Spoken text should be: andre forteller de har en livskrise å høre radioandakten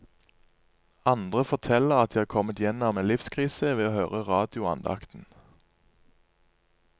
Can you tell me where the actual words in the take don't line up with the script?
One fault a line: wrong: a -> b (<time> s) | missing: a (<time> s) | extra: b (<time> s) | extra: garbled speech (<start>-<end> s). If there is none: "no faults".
extra: at (1.9 s)
extra: kommet gjennom (2.2 s)
extra: ved (3.8 s)